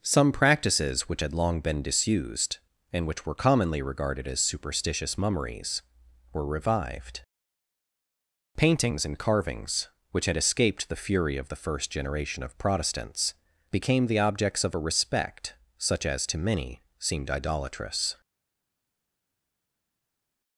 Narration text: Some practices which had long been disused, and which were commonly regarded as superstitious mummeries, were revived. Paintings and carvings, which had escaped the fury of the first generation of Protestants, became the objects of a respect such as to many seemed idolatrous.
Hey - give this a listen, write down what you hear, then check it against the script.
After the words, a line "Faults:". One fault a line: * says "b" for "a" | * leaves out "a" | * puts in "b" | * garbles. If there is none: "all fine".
Some practices which had long been disused, and which were commonly regarded as superstitious mummeries, were revived. Paintings and carvings, which had escaped the fury of the first generation of Protestants, became the objects of a respect such as to many seemed idolatrous.
Faults:
all fine